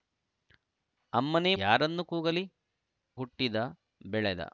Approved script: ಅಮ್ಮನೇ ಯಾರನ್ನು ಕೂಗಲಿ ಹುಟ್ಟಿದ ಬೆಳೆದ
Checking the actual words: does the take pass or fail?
pass